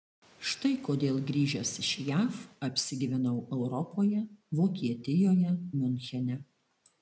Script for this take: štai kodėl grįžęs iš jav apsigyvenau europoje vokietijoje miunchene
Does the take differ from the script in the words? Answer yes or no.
no